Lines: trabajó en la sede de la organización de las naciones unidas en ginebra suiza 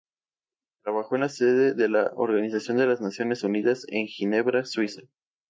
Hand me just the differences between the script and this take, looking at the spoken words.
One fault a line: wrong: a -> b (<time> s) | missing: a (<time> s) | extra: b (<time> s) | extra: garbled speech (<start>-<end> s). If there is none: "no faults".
no faults